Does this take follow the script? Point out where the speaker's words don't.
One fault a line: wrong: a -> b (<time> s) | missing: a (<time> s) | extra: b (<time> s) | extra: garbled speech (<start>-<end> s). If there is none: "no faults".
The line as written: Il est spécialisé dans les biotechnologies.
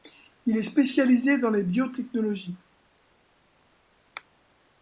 no faults